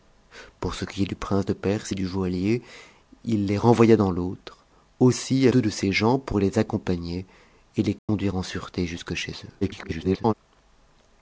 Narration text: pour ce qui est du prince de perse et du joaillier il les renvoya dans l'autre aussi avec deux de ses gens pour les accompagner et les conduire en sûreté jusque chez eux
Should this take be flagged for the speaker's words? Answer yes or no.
yes